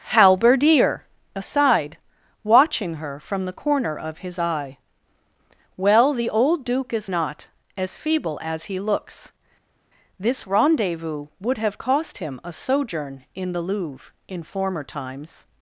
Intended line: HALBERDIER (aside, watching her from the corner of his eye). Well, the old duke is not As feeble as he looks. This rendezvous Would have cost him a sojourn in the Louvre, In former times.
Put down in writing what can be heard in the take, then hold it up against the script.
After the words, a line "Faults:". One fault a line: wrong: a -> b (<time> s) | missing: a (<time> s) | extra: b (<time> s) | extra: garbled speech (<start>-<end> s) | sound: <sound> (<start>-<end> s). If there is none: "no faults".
HALBERDIER (aside, watching her from the corner of his eye). Well, the old duke is not As feeble as he looks. This rendezvous Would have cost him a sojourn in the Louvre, In former times.
Faults:
no faults